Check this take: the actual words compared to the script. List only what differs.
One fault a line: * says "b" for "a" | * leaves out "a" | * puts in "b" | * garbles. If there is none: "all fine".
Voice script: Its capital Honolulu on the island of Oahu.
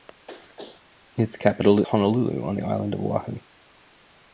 all fine